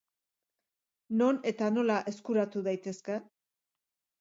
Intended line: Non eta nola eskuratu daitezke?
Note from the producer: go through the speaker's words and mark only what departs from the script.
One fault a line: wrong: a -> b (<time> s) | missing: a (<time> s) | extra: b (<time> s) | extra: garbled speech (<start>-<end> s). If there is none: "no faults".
no faults